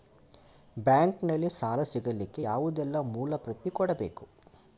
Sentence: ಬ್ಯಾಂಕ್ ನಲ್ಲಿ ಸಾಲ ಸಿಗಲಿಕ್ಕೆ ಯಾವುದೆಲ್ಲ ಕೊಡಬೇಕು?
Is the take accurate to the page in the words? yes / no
no